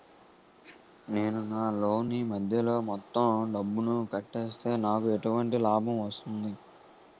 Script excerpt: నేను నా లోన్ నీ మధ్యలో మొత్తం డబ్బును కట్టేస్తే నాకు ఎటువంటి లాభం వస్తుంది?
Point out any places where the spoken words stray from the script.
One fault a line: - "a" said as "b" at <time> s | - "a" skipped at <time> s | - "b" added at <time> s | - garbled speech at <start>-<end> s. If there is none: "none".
none